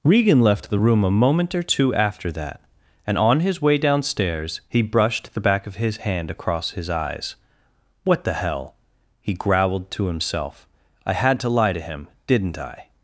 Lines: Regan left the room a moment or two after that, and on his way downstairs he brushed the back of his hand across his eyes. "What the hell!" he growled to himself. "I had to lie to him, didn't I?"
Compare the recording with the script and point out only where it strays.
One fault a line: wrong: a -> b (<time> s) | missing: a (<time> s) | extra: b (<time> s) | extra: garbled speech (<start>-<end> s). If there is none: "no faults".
no faults